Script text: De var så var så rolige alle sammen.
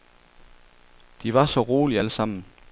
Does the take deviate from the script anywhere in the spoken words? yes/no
yes